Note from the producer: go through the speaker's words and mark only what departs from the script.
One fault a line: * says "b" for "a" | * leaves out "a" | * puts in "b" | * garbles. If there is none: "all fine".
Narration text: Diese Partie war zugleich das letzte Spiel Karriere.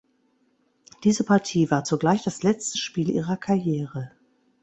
* puts in "ihrer"